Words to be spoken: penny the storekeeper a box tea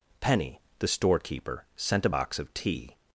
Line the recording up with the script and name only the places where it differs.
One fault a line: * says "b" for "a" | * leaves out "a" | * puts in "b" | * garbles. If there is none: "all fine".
* puts in "sent"
* puts in "of"